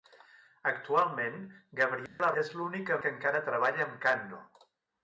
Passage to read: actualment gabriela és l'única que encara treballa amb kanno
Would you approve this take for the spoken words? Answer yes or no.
yes